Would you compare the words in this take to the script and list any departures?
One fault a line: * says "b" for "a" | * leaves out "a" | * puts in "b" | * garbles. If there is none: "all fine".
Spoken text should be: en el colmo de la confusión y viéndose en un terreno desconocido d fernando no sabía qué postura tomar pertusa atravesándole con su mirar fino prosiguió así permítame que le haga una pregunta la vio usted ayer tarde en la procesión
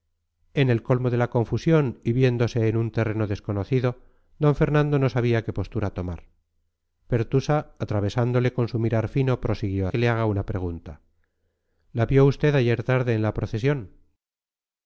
* leaves out "así permítame"